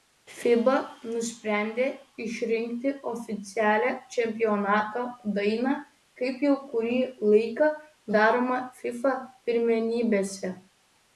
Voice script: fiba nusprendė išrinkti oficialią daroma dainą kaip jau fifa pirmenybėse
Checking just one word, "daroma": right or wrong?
wrong